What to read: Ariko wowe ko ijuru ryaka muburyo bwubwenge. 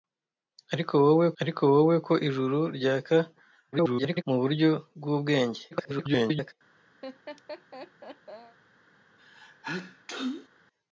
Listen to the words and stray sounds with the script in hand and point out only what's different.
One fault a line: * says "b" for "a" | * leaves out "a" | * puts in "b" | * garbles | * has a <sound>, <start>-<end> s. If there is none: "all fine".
* puts in "ariko wowe"
* garbles
* garbles
* has a laugh, 7.0-8.6 s
* has a sneeze, 9.2-10.5 s